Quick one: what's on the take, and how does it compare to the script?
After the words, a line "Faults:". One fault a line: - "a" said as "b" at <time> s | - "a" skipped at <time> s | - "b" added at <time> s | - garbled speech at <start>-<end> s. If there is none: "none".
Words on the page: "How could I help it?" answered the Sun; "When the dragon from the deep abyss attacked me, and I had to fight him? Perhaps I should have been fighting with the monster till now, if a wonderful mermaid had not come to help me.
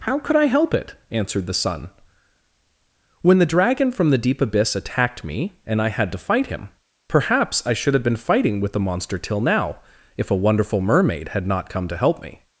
"How could I help it?" answered the Sun; "When the dragon from the deep abyss attacked me, and I had to fight him? Perhaps I should have been fighting with the monster till now, if a wonderful mermaid had not come to help me.
Faults:
none